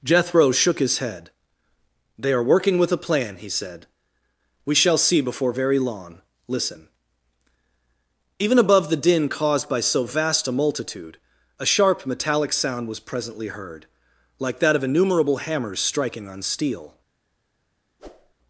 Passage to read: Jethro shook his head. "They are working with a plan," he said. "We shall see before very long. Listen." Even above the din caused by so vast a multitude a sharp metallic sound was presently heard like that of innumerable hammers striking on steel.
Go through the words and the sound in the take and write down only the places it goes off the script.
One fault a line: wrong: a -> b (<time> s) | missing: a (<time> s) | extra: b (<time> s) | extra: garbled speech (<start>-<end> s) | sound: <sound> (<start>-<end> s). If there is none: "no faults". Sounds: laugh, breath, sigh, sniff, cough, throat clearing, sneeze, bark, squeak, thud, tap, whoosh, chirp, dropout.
sound: whoosh (18.0-18.3 s)